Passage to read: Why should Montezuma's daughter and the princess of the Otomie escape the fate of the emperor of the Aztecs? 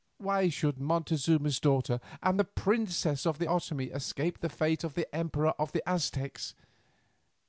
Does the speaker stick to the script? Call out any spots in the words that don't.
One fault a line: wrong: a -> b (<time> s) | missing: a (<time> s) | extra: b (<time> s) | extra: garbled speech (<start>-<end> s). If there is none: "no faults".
no faults